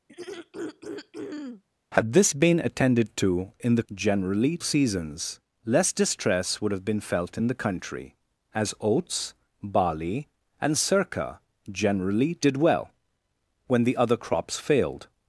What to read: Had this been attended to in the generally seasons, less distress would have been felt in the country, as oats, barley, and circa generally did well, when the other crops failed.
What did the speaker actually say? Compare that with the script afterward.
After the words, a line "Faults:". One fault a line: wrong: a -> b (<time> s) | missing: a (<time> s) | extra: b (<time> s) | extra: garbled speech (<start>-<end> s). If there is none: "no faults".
Had this been attended to in the generally seasons, less distress would have been felt in the country, as oats, barley, and circa generally did well, when the other crops failed.
Faults:
no faults